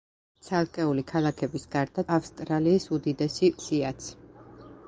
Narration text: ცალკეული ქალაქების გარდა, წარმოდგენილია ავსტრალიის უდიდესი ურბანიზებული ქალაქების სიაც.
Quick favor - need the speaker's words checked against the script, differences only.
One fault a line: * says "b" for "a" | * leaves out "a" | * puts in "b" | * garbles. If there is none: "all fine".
* leaves out "წარმოდგენილია"
* leaves out "ურბანიზებული ქალაქების"